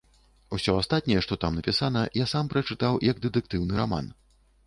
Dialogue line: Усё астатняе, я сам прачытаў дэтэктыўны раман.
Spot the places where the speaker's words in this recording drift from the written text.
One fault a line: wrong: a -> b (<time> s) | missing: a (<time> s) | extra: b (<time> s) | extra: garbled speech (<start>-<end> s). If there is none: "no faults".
extra: што там напісана (1.2 s)
extra: як (3.1 s)